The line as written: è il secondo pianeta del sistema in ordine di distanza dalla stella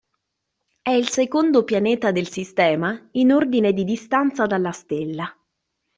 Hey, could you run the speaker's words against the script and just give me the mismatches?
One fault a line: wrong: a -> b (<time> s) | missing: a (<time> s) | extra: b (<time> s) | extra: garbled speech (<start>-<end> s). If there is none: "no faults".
no faults